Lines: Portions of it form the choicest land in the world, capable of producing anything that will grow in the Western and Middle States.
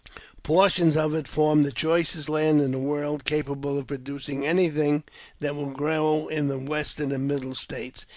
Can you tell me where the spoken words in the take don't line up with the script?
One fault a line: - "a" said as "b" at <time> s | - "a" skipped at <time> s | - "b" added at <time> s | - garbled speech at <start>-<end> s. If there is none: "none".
none